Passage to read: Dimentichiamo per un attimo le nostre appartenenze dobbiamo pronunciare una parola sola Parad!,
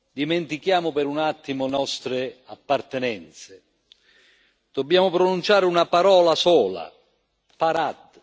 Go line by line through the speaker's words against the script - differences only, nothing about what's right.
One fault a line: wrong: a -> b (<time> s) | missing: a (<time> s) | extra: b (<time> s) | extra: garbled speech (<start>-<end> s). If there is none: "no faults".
missing: le (1.7 s)